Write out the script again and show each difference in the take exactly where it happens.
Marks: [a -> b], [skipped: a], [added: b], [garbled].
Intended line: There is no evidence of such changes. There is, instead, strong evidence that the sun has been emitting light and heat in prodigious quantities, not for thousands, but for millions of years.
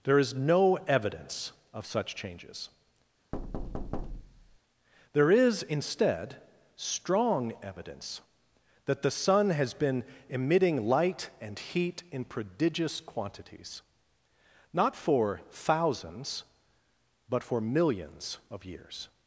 There is no evidence of such changes. There is, instead, strong evidence that the sun has been emitting light and heat in prodigious quantities, not for thousands, but for millions of years.